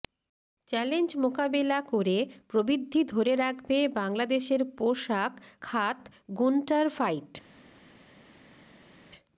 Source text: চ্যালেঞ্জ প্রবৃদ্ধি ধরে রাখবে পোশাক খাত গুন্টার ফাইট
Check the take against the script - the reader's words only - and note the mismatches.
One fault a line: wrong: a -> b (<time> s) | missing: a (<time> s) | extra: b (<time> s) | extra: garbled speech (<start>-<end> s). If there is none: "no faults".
extra: মোকাবেলা করে (1.2 s)
extra: বাংলাদেশের (4.0 s)